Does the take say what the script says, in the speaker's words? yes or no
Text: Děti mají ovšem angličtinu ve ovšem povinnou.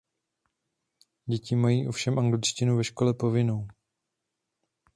no